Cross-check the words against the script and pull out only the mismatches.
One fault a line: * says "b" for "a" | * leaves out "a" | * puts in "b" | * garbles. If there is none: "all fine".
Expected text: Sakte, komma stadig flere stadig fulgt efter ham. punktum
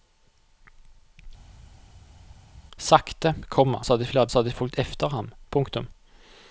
all fine